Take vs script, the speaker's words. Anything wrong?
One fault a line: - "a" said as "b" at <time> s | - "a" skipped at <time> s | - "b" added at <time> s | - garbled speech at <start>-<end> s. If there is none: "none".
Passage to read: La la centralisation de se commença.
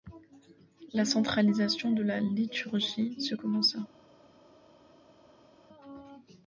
- "la" skipped at 1.1 s
- "la liturgie" added at 2.0 s